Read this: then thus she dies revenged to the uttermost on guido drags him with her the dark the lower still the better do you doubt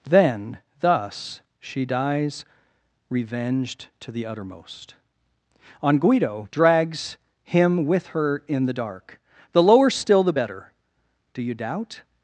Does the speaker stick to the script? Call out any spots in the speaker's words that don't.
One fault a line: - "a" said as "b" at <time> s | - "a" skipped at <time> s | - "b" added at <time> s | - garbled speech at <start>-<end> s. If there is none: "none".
- "in" added at 8.5 s